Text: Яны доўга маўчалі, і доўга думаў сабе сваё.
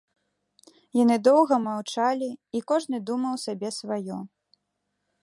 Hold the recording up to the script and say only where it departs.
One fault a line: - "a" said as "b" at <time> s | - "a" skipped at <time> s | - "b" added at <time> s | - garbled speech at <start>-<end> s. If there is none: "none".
- "доўга" said as "кожны" at 2.7 s